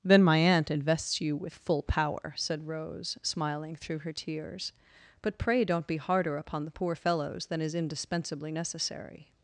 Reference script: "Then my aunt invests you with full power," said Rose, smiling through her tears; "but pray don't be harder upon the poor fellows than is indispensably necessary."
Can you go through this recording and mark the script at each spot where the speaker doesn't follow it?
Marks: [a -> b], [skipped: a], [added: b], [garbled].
"Then my aunt invests you with full power," said Rose, smiling through her tears; "but pray don't be harder upon the poor fellows than is indispensably necessary."